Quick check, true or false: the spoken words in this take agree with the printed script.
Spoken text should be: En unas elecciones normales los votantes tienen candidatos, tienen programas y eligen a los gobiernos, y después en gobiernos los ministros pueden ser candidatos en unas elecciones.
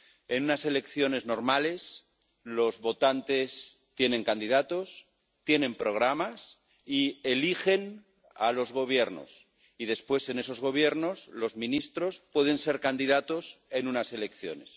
false